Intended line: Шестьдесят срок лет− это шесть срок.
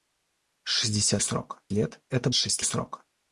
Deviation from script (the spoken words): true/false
false